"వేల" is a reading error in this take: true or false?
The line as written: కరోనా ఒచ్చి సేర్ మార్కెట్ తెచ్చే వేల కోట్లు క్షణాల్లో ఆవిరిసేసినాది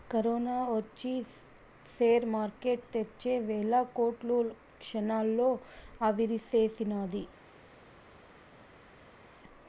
false